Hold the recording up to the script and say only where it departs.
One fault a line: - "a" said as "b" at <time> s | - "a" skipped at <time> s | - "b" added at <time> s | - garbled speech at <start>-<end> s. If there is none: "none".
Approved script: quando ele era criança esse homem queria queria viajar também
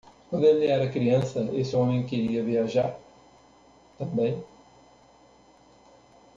- "queria" skipped at 2.4 s